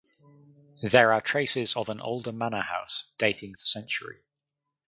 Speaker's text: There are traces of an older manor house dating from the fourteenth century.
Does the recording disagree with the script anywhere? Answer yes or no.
yes